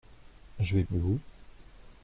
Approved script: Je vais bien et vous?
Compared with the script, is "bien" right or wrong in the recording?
wrong